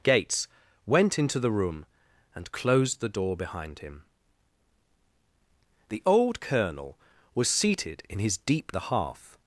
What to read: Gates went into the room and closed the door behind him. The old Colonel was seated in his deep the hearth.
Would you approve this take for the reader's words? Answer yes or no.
yes